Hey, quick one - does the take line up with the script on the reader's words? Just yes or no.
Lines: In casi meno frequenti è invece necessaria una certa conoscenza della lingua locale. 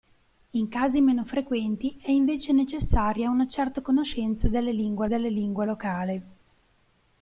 no